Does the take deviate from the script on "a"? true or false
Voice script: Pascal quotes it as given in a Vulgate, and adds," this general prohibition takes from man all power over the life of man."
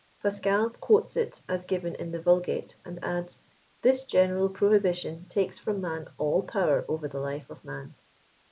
true